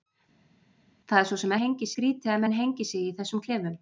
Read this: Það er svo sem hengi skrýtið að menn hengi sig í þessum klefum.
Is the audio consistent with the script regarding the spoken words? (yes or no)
yes